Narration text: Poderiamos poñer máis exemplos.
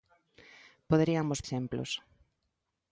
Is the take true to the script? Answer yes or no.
no